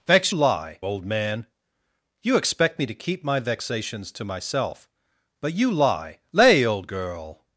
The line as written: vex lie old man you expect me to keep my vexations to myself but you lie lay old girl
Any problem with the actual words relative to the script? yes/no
no